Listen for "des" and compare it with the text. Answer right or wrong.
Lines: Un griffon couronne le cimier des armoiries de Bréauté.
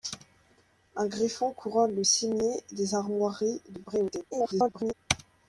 right